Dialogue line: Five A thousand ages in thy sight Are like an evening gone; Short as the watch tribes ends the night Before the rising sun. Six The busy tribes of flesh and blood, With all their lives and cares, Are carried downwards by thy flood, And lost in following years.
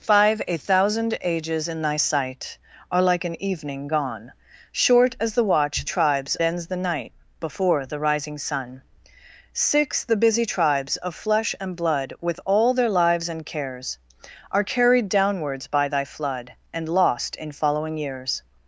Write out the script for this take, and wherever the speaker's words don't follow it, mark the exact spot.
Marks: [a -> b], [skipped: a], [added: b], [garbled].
Five A thousand ages in thy sight Are like an evening gone; Short as the watch tribes ends the night Before the rising sun. Six The busy tribes of flesh and blood, With all their lives and cares, Are carried downwards by thy flood, And lost in following years.